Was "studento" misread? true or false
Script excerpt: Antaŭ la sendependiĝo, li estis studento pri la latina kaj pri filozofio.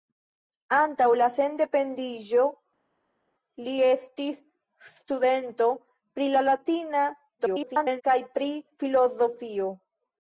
false